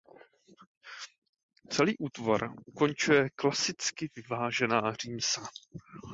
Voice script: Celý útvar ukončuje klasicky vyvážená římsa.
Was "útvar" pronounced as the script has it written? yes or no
yes